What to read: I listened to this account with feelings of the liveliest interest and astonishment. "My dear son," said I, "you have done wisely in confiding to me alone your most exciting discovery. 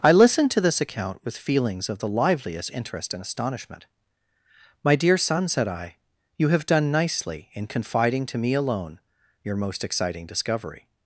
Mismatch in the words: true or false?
true